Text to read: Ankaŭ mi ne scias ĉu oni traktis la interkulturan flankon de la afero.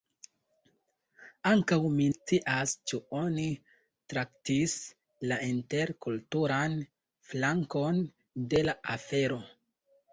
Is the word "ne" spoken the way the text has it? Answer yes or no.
no